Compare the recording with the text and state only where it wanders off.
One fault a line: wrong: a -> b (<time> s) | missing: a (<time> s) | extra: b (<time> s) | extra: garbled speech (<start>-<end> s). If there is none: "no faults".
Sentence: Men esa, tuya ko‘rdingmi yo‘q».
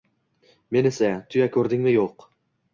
no faults